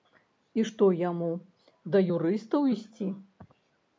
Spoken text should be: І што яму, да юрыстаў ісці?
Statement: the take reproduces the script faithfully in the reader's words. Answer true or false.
true